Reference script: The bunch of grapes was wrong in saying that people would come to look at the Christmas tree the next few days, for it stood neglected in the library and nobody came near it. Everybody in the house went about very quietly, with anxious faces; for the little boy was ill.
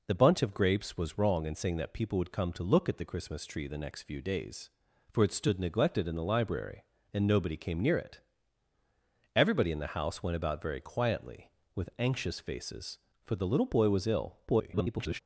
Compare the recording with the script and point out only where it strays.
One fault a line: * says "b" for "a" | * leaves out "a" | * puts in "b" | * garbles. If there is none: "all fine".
* garbles